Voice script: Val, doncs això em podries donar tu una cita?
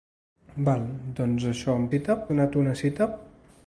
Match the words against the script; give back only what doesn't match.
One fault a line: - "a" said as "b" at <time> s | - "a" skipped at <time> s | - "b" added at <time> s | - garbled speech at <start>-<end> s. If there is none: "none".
- "podries" said as "cita" at 1.9 s